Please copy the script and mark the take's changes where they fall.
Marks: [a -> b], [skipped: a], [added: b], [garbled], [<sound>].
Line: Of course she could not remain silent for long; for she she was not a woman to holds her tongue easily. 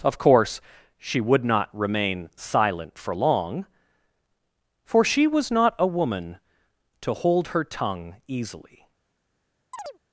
Of course she [could -> would] not remain silent for long; for she [skipped: she] was not a woman to [holds -> hold] her tongue easily. [chirp]